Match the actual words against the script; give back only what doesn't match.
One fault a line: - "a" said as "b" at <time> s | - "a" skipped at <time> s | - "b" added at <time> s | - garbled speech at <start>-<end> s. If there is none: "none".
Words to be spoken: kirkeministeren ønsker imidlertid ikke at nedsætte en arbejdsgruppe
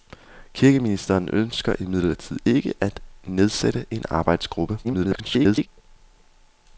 - garbled speech at 4.8-5.7 s